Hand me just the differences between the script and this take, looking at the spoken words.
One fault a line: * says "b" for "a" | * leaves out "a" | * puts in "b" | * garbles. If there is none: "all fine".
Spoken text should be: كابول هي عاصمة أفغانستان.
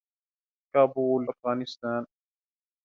* leaves out "هي عاصمة"